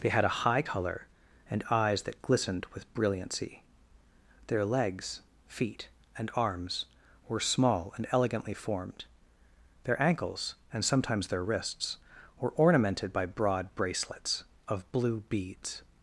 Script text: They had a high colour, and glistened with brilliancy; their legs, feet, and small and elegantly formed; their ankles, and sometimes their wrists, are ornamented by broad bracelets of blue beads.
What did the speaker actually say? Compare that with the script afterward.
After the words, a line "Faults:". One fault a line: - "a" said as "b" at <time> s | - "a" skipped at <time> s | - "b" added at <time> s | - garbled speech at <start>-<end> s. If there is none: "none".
They had a high colour, and eyes that glistened with brilliancy; their legs, feet, and arms were small and elegantly formed; their ankles, and sometimes their wrists, were ornamented by broad bracelets of blue beads.
Faults:
- "eyes that" added at 1.7 s
- "arms were" added at 6.3 s
- "are" said as "were" at 12.4 s